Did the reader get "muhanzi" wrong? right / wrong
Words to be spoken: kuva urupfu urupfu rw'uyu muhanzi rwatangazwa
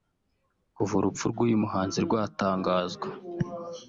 right